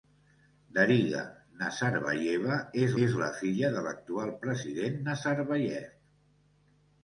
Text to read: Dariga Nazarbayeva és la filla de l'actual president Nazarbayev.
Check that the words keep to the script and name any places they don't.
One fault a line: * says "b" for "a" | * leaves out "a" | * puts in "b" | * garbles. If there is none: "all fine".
* puts in "és"